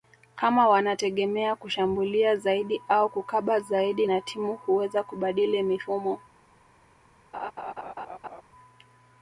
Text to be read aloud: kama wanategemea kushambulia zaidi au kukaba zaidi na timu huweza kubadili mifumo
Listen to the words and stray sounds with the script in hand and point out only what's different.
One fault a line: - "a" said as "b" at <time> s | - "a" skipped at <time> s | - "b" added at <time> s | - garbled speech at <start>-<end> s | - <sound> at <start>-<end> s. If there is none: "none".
- laugh at 7.3-8.4 s